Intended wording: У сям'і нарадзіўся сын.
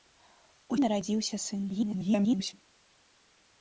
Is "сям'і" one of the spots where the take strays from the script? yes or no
yes